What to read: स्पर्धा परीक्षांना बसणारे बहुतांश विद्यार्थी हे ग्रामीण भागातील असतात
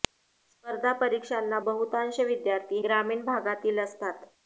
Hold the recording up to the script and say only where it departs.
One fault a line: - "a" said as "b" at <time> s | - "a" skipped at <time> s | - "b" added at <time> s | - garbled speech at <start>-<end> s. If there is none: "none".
- "बसणारे" skipped at 1.6 s
- "हे" skipped at 2.8 s